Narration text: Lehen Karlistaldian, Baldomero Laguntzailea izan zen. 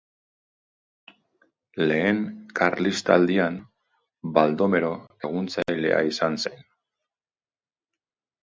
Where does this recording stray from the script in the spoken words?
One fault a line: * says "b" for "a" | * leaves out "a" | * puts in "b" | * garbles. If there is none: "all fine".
all fine